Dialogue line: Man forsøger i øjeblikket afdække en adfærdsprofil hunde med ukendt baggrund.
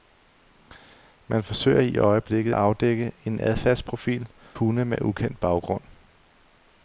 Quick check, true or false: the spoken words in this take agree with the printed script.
true